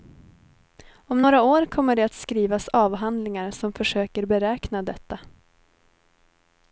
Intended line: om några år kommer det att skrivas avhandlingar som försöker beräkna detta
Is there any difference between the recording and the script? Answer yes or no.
no